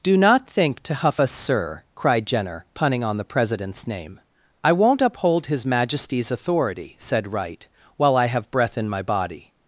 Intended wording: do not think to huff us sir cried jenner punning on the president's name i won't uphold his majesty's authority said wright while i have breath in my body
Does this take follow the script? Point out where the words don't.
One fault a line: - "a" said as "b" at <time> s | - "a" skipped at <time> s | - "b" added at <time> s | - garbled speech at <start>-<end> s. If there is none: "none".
none